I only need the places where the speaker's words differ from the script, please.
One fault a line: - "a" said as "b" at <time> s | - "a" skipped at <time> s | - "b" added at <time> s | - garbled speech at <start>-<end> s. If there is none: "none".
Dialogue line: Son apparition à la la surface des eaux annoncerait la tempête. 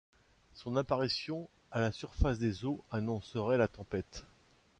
- "la" skipped at 1.9 s